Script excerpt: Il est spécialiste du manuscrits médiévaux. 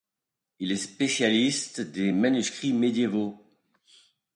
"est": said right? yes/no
yes